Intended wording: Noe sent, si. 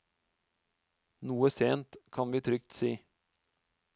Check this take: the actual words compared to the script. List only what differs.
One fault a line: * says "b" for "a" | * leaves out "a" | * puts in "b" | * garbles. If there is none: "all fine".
* puts in "kan vi trygt"